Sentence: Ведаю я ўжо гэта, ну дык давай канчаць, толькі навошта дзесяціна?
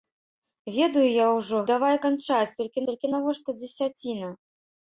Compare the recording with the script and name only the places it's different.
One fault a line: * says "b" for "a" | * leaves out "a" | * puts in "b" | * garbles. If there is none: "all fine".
* leaves out "гэта ну дык"
* puts in "толькі"